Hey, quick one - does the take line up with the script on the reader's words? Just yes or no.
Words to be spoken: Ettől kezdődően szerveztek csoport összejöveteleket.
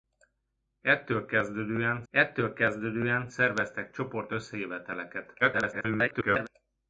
no